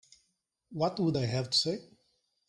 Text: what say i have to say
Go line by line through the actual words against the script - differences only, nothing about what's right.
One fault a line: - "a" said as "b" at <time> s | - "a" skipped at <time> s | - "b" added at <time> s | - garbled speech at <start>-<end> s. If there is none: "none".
- "say" said as "would" at 1.0 s